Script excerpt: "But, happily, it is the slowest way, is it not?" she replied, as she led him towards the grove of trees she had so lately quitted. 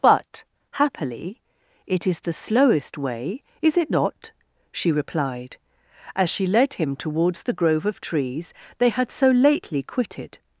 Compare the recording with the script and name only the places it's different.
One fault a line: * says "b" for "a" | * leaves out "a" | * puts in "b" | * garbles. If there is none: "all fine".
* says "they" for "she"